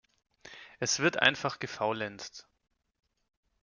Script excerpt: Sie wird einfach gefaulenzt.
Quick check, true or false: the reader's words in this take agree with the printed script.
false